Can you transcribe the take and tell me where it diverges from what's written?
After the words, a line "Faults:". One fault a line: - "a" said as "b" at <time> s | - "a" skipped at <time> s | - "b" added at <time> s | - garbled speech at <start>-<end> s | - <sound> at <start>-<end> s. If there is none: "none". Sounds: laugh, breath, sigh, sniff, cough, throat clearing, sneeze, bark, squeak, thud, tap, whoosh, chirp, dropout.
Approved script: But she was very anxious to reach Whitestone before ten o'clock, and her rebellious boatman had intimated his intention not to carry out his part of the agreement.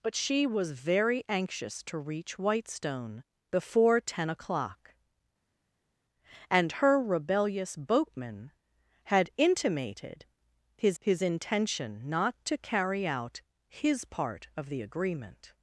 But she was very anxious to reach Whitestone before ten o'clock, and her rebellious boatman had intimated his his intention not to carry out his part of the agreement.
Faults:
- "his" added at 11.0 s